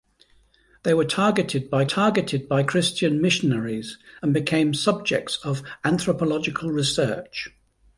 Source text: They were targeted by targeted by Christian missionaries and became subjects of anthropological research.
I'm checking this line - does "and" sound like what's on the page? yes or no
yes